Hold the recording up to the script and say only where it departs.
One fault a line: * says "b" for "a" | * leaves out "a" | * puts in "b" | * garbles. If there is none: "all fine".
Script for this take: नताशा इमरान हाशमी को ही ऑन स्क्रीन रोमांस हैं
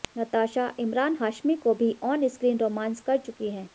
* says "भी" for "ही"
* puts in "कर चुकी"